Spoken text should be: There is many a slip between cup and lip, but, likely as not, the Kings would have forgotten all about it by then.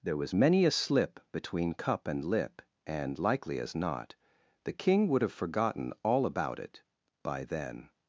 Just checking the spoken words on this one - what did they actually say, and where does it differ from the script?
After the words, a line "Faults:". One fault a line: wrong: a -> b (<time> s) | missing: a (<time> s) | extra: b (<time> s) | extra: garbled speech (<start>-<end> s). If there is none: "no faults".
There was many a slip between cup and lip, and, likely as not, the King would have forgotten all about it by then.
Faults:
wrong: is -> was (0.2 s)
wrong: but -> and (2.9 s)
wrong: Kings -> King (4.7 s)